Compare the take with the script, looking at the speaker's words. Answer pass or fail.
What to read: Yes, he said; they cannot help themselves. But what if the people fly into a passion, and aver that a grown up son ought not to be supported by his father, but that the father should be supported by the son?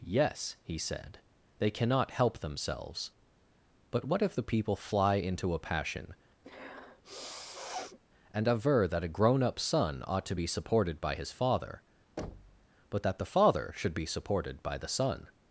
fail